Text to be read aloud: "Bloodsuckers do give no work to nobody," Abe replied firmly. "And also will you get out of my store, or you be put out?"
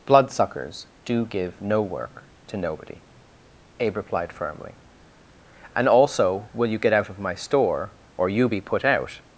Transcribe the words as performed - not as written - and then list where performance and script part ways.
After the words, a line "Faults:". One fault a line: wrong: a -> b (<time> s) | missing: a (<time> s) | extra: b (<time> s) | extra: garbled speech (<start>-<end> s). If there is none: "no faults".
"Bloodsuckers do give no work to nobody," Abe replied firmly. "And also will you get out of my store, or you be put out?"
Faults:
no faults